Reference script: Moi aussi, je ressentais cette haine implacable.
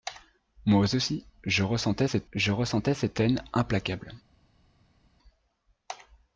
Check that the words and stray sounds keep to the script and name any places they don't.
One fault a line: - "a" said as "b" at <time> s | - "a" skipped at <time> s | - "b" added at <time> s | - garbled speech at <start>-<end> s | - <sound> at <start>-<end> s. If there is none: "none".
- "je ressentais cette" added at 2.3 s